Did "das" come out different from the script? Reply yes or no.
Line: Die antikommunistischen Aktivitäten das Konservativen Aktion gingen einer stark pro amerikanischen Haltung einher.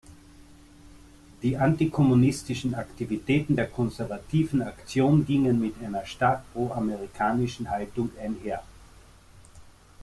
yes